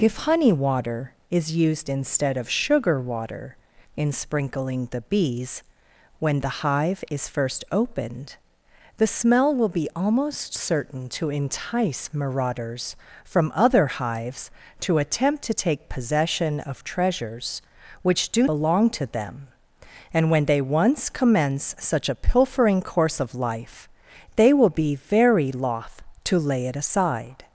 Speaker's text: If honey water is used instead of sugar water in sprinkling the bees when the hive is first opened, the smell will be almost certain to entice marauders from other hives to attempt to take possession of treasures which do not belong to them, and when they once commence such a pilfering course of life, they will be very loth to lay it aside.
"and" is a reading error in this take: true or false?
false